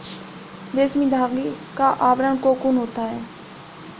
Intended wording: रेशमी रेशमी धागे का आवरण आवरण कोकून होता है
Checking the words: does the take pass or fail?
fail